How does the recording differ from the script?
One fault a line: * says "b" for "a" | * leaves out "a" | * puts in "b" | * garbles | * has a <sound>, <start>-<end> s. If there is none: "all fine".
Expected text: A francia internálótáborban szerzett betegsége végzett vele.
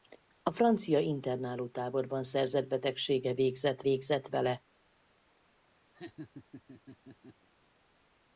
* puts in "végzett"
* has a laugh, 5.9-7.5 s